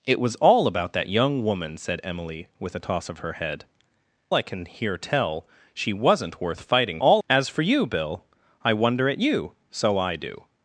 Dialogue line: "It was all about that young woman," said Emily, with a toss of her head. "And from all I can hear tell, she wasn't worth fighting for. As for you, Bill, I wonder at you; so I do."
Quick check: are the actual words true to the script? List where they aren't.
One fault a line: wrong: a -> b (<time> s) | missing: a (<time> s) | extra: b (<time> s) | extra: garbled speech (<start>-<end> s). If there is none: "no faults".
missing: And from all (3.6 s)
wrong: for -> all (7.0 s)